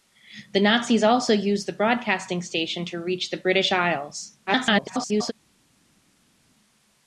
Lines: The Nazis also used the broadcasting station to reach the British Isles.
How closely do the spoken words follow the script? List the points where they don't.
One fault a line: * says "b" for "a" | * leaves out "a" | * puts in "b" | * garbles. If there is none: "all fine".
* garbles